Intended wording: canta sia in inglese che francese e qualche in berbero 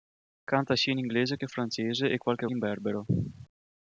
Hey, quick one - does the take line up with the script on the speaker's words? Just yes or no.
yes